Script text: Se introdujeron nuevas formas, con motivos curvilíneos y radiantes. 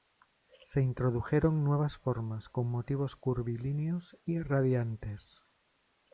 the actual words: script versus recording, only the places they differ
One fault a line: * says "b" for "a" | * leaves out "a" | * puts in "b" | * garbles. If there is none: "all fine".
all fine